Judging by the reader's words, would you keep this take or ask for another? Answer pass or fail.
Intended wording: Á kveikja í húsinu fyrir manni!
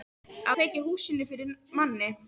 pass